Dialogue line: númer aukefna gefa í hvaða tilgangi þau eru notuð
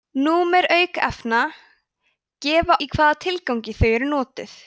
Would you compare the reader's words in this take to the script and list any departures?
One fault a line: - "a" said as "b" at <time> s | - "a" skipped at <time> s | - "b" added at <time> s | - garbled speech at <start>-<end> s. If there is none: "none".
none